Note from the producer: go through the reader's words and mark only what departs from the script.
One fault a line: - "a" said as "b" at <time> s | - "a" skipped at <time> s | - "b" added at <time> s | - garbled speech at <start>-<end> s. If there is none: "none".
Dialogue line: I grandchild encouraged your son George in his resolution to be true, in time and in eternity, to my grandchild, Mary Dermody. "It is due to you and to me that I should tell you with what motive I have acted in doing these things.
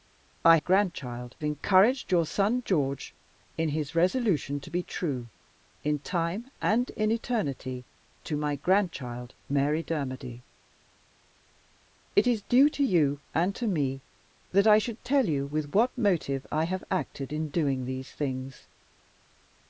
none